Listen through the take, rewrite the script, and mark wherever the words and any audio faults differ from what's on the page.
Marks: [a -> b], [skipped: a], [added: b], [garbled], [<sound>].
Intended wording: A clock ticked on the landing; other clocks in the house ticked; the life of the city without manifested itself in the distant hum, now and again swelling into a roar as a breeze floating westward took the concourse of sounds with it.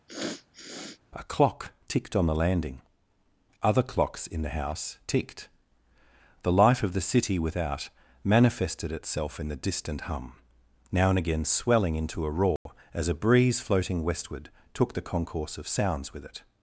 [sniff] A clock ticked on the landing; other clocks in the house ticked; the life of the city without manifested itself in the distant hum, now and again swelling into a roar [dropout] as a breeze floating westward took the concourse of sounds with it.